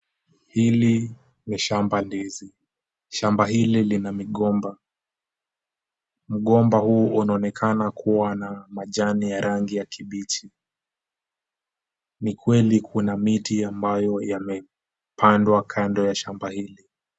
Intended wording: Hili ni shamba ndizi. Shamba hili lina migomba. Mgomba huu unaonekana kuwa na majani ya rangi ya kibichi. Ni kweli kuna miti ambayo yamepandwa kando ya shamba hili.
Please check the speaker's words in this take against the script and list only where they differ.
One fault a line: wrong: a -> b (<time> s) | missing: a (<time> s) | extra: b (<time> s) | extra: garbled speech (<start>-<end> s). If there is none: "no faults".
no faults